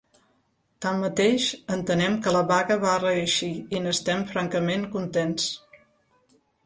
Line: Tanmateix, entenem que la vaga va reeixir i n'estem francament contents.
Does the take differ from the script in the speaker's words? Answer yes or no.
no